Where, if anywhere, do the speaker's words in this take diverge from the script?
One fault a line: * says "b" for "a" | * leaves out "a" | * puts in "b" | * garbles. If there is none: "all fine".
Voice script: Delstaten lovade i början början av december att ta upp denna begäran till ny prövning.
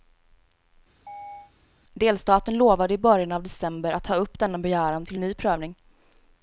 * leaves out "början"